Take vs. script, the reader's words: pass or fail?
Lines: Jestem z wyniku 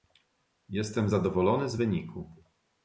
fail